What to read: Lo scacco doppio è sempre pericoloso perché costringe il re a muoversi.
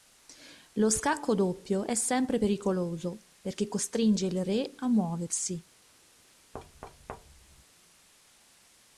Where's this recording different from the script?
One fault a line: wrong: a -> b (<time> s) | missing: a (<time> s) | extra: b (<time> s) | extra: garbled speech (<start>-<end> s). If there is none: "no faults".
no faults